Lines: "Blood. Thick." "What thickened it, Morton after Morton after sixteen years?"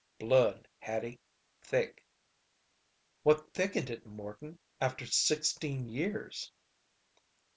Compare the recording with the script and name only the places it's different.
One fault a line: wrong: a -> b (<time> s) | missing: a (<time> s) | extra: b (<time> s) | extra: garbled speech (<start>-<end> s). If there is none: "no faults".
extra: Hattie (0.8 s)
missing: Morton after (5.1 s)